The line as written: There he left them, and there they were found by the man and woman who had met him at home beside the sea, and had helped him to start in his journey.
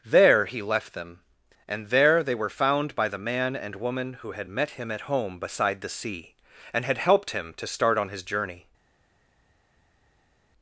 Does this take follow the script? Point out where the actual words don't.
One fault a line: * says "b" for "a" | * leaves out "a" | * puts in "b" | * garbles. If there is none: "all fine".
* says "on" for "in"